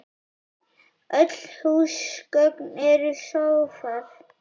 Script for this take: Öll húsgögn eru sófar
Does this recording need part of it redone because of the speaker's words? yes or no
no